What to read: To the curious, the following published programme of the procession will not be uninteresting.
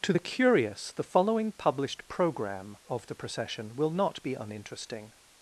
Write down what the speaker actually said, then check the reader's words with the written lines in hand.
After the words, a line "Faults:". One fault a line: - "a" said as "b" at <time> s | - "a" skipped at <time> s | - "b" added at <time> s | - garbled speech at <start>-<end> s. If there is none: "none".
To the curious, the following published programme of the procession will not be uninteresting.
Faults:
none